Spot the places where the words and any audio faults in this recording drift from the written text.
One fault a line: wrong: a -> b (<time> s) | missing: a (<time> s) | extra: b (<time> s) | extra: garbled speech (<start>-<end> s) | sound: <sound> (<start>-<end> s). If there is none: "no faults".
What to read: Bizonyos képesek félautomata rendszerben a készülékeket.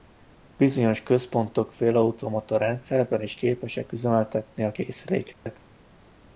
wrong: képesek -> központok (1.0 s)
extra: is képesek üzemeltetni (3.2 s)
sound: dropout (5.3-5.5 s)